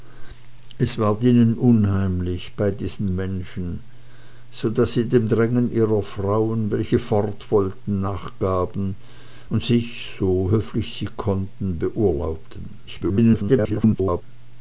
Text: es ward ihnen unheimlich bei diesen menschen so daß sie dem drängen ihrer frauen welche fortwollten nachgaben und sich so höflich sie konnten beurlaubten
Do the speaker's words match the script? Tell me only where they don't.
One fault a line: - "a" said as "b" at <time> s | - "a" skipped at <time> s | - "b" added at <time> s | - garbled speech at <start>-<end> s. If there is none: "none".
- garbled speech at 12.9-14.2 s